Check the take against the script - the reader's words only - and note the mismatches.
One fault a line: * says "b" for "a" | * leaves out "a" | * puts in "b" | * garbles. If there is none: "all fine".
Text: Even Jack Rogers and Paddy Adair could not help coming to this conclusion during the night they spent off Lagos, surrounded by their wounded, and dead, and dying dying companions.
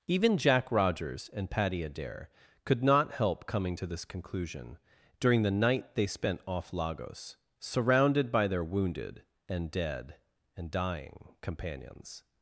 * leaves out "dying"